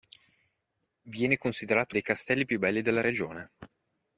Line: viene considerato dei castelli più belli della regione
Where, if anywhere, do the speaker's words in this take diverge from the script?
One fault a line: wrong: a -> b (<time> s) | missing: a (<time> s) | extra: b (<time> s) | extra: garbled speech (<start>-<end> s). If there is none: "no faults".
no faults